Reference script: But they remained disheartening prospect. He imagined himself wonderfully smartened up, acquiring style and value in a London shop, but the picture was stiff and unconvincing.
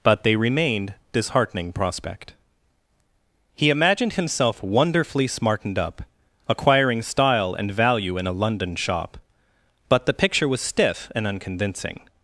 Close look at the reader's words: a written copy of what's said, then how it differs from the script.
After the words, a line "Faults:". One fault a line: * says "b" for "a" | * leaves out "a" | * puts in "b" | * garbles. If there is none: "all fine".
But they remained disheartening prospect. He imagined himself wonderfully smartened up, acquiring style and value in a London shop, but the picture was stiff and unconvincing.
Faults:
all fine